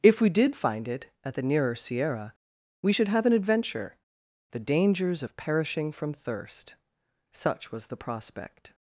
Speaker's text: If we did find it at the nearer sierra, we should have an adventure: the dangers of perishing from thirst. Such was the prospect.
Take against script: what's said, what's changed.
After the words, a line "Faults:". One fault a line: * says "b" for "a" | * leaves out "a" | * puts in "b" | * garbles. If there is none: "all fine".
If we did find it at the nearer sierra, we should have an adventure: the dangers of perishing from thirst. Such was the prospect.
Faults:
all fine